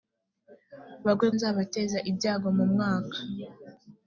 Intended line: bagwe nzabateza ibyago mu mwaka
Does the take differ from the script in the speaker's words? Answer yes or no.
no